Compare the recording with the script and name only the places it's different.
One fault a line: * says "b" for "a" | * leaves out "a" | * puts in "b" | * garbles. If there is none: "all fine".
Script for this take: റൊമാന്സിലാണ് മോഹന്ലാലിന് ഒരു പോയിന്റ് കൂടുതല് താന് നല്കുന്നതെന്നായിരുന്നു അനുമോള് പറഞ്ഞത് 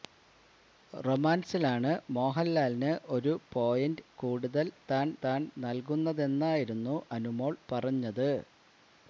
* puts in "താന്"